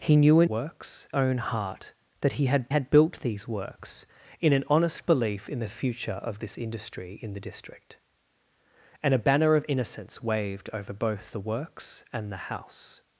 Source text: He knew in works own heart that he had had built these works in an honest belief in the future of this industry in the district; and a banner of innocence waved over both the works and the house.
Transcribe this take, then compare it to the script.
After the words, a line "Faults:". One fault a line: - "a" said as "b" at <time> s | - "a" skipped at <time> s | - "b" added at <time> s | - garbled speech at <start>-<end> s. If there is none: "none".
He knew in works own heart that he had had built these works in an honest belief in the future of this industry in the district; and a banner of innocence waved over both the works and the house.
Faults:
none